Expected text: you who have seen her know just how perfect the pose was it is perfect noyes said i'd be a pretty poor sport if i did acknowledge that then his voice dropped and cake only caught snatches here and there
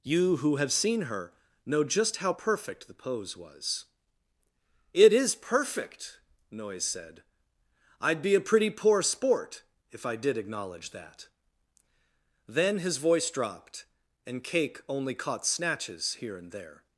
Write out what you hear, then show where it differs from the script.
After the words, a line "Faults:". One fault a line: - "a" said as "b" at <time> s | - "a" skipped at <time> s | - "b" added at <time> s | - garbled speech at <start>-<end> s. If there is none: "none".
you who have seen her know just how perfect the pose was it is perfect noyes said i'd be a pretty poor sport if i did acknowledge that then his voice dropped and cake only caught snatches here and there
Faults:
none